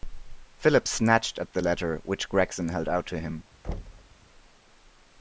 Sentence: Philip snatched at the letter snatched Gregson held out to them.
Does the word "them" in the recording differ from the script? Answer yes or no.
yes